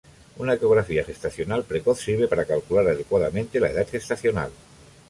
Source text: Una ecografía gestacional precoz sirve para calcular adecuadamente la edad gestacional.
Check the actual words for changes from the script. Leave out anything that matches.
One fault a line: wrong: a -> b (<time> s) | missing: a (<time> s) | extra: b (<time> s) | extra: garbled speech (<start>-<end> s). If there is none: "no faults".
no faults